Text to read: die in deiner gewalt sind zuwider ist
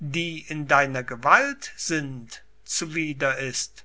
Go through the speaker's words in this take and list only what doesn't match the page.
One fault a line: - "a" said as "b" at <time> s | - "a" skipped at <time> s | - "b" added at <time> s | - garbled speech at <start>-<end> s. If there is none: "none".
none